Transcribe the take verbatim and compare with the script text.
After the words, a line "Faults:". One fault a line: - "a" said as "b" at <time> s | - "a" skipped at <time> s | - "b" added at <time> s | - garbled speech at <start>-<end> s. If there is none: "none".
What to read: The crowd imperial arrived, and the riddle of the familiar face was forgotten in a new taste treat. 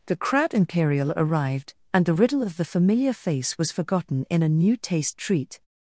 The crowd imperial arrived, and the riddle of the familiar face was forgotten in a new taste treat.
Faults:
none